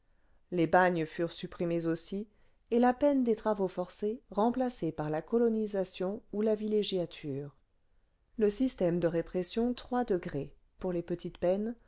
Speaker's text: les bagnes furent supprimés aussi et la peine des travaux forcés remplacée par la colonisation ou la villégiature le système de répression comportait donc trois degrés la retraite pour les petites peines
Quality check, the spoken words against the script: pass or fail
fail